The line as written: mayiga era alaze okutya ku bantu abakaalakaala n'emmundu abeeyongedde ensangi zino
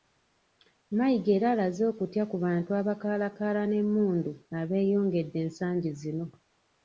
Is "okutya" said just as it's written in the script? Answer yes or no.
yes